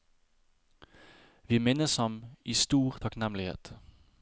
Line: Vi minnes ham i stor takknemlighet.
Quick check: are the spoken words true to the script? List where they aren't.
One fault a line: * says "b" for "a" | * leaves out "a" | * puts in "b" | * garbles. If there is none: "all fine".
all fine